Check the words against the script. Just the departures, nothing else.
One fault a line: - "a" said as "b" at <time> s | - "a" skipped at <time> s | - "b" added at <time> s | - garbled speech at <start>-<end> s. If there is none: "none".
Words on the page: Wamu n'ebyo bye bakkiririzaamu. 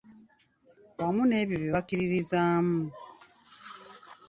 none